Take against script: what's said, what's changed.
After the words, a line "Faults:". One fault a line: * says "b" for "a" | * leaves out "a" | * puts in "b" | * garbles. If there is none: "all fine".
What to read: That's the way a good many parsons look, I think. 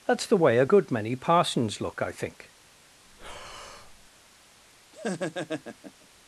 That's the way a good many parsons look, I think.
Faults:
all fine